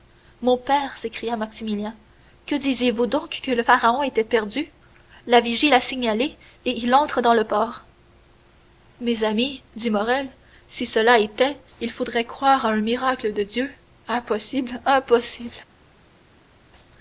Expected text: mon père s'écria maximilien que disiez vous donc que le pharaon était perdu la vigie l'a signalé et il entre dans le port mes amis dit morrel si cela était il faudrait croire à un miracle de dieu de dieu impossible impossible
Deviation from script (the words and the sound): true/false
true